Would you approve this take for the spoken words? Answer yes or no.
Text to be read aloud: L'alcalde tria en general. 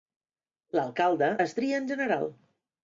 no